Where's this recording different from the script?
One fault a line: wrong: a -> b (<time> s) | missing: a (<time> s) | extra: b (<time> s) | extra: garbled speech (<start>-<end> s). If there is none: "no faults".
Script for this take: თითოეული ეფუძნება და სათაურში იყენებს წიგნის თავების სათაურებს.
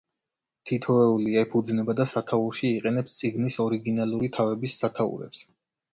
extra: ორიგინალური (3.7 s)